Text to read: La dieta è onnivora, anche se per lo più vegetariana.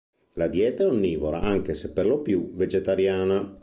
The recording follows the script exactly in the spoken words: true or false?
true